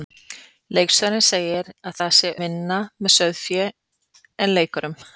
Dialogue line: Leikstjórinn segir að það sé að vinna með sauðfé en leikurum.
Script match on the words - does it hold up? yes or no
yes